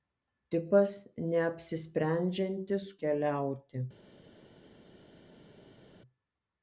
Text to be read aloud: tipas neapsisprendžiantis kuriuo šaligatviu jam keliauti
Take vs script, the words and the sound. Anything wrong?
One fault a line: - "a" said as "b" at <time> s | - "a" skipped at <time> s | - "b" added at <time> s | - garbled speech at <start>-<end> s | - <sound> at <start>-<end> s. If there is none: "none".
- "kuriuo šaligatviu jam" skipped at 2.9 s